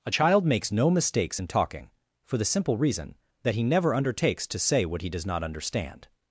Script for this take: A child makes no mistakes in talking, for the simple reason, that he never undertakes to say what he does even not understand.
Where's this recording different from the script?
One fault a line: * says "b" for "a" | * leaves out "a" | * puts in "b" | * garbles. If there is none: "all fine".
* leaves out "even"